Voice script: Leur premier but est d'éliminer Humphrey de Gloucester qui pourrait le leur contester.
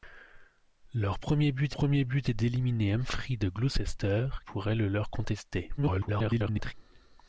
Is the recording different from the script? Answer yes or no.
yes